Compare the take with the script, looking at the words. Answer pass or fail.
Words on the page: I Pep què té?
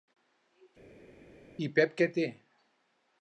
pass